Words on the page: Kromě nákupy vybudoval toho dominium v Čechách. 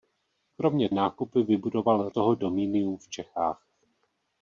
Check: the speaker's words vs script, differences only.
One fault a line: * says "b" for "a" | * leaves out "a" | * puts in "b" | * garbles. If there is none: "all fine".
all fine